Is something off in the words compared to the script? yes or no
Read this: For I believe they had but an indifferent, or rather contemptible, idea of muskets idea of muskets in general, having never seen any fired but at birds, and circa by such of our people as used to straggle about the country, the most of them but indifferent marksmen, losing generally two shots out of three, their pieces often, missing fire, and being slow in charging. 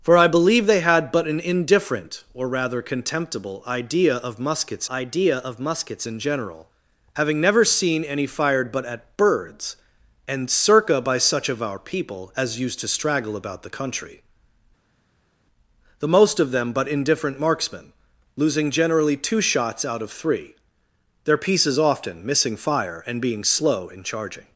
no